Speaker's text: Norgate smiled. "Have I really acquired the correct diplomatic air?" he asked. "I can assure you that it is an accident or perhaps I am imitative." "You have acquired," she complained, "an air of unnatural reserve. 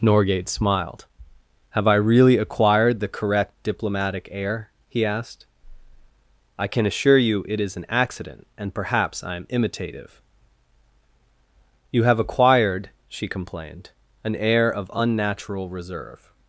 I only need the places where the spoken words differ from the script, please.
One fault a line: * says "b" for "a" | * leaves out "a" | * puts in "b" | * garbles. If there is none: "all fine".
* leaves out "that"
* says "and" for "or"